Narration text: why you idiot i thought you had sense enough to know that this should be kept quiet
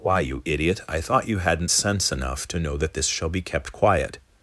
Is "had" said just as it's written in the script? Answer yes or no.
no